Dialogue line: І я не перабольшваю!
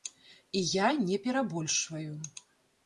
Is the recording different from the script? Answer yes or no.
no